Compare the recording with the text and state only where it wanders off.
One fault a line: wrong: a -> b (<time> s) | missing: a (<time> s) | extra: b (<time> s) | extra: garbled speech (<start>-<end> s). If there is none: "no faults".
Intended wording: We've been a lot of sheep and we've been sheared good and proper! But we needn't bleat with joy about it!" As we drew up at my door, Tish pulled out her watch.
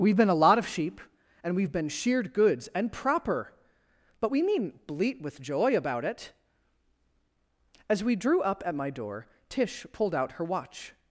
wrong: good -> goods (2.3 s)